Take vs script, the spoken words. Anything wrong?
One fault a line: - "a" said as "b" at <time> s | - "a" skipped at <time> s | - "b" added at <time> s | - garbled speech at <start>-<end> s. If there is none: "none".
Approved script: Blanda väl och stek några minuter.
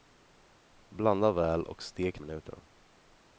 - "några" skipped at 2.2 s